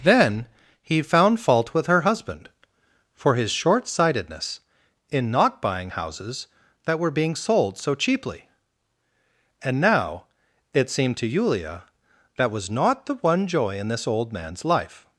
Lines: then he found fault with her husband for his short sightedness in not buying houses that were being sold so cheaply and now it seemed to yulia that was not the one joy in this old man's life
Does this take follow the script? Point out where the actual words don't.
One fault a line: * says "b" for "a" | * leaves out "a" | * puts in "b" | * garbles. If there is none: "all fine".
all fine